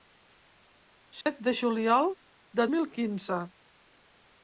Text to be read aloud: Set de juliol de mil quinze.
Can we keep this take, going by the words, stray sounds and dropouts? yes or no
no